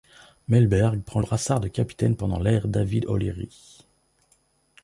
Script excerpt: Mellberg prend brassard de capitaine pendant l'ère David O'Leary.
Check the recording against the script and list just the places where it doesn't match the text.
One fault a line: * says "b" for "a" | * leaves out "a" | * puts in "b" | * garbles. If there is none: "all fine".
all fine